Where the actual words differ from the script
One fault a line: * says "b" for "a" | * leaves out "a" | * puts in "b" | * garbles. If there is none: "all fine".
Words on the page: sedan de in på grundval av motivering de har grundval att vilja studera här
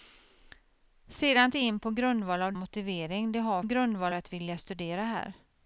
all fine